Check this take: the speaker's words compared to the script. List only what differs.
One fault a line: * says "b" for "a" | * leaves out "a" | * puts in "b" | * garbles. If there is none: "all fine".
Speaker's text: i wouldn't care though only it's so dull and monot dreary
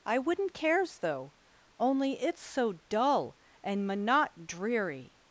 * says "cares" for "care"